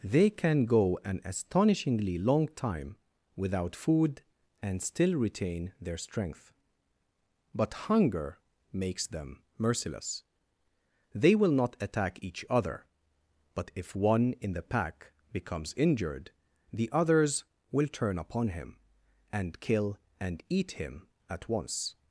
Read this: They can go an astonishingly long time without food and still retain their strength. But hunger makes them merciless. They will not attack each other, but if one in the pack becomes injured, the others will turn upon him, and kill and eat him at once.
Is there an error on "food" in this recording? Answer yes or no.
no